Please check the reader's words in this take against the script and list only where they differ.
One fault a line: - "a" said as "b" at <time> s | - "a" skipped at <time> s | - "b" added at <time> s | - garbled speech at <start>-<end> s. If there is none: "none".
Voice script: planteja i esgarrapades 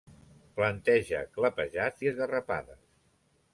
- "clapejats" added at 1.4 s